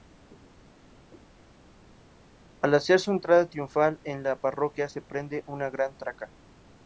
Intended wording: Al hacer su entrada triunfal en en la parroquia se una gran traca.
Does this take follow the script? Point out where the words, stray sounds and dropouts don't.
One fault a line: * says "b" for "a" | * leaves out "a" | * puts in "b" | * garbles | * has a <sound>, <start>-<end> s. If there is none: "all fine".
* leaves out "en"
* puts in "prende"